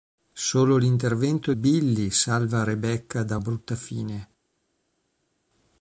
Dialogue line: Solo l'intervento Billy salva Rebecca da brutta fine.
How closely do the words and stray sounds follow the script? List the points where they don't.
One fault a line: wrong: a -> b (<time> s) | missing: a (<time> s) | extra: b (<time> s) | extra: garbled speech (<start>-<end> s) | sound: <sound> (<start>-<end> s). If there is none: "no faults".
no faults